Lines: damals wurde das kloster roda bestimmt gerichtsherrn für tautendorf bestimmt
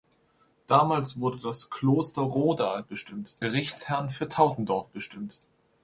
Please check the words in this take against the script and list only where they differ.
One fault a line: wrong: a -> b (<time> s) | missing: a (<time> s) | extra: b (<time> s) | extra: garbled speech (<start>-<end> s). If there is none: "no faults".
no faults